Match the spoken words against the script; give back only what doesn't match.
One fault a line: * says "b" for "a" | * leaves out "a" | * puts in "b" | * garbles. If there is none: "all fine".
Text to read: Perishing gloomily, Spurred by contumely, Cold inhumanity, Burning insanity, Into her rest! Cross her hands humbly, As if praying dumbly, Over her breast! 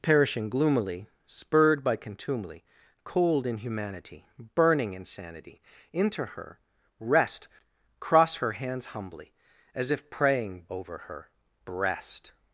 * leaves out "dumbly"